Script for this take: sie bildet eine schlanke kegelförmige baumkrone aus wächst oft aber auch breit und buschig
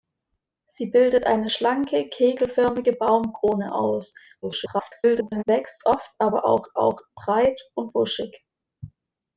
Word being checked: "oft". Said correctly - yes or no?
yes